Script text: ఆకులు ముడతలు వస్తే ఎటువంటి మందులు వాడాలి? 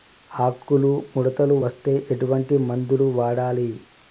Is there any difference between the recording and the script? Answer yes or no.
no